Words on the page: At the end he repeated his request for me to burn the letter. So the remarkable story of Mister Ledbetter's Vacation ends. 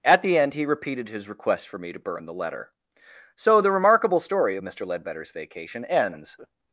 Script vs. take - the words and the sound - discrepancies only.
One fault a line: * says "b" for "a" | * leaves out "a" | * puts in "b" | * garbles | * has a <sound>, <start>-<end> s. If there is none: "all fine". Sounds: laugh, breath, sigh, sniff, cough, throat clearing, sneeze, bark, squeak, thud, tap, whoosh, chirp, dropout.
all fine